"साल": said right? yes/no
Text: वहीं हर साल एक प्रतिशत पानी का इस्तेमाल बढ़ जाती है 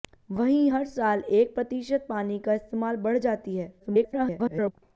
yes